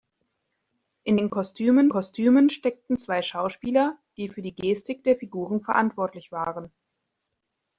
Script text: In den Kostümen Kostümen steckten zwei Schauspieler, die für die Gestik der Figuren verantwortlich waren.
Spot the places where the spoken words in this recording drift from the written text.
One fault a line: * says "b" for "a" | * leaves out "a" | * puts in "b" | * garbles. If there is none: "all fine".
all fine